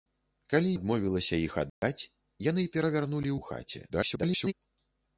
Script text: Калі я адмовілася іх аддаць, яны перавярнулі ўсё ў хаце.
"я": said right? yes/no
no